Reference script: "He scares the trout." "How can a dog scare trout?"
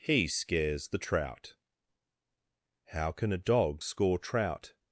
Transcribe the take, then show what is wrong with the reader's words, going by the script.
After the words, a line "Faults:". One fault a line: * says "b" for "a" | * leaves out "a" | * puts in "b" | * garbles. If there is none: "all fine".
"He scares the trout." "How can a dog score trout?"
Faults:
* says "score" for "scare"